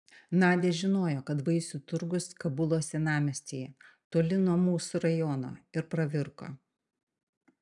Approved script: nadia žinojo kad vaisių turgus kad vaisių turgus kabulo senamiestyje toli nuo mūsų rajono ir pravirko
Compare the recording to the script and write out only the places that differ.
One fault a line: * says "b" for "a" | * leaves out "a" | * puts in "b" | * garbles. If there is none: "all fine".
* leaves out "kad vaisių turgus"